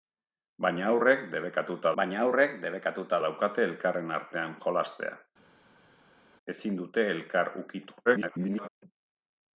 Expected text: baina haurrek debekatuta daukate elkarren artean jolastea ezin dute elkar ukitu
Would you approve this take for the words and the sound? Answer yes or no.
no